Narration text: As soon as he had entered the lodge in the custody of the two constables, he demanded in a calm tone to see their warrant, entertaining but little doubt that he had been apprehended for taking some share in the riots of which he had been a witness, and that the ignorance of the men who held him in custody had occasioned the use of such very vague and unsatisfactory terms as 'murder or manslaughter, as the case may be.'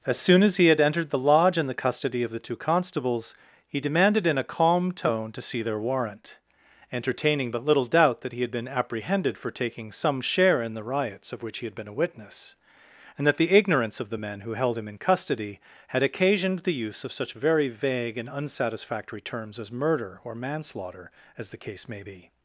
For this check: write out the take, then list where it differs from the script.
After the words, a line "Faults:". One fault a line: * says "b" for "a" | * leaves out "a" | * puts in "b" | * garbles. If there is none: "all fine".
As soon as he had entered the lodge in the custody of the two constables, he demanded in a calm tone to see their warrant, entertaining but little doubt that he had been apprehended for taking some share in the riots of which he had been a witness, and that the ignorance of the men who held him in custody had occasioned the use of such very vague and unsatisfactory terms as 'murder or manslaughter, as the case may be.'
Faults:
all fine